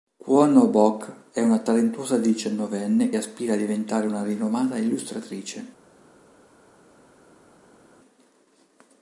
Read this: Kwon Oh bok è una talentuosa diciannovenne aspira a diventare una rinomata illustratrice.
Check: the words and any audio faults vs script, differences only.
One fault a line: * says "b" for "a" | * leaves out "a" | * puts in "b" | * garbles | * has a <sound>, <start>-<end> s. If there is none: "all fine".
all fine